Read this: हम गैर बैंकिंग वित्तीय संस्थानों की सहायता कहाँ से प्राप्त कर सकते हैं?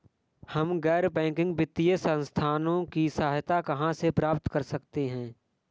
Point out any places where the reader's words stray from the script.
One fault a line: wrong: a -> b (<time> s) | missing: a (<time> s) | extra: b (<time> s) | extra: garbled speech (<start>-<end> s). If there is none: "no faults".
no faults